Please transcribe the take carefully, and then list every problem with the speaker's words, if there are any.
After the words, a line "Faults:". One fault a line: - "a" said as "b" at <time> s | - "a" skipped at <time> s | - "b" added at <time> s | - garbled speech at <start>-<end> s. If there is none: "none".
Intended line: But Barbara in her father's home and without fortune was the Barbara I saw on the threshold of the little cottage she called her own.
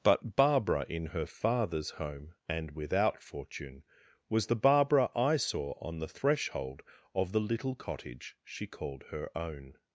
But Barbara in her father's home and without fortune was the Barbara I saw on the threshold of the little cottage she called her own.
Faults:
none